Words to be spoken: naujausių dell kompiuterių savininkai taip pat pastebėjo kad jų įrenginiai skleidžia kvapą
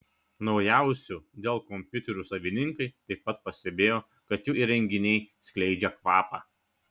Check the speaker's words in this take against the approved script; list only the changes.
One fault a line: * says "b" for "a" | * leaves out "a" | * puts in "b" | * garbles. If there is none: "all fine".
all fine